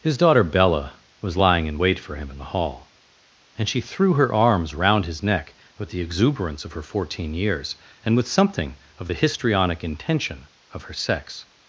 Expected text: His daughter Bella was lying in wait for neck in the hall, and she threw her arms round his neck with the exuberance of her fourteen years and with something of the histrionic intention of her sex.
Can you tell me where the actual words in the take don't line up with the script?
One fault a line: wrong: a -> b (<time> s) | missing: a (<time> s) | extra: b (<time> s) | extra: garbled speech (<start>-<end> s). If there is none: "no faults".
wrong: neck -> him (2.1 s)